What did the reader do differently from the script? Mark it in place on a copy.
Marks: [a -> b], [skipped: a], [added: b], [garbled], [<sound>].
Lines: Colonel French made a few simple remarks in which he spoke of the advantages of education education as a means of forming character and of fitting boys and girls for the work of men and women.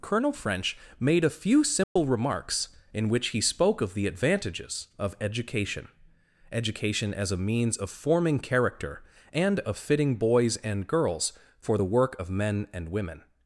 Colonel French made a few simple [dropout] remarks in which he spoke of the advantages of education education as a means of forming character and of fitting boys and girls for the work of men and women.